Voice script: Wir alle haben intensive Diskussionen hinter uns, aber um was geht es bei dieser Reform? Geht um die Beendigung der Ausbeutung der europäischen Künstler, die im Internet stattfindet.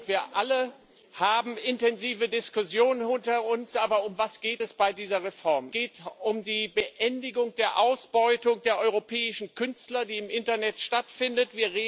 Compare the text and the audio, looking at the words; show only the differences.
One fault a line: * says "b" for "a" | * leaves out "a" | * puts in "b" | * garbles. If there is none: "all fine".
all fine